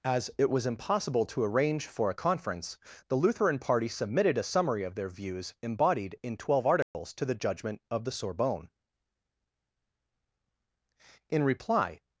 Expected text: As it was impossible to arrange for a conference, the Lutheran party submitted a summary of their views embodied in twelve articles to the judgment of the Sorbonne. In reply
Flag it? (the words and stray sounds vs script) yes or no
yes